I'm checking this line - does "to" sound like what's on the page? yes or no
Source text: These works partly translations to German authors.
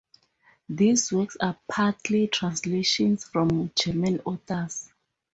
no